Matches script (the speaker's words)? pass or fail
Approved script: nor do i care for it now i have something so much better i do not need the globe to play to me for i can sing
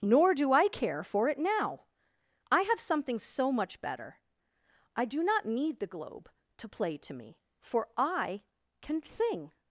pass